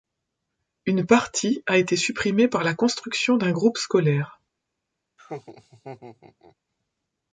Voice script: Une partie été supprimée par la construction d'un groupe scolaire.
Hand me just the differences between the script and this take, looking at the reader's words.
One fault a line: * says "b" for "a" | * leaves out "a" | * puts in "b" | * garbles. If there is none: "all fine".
* puts in "a"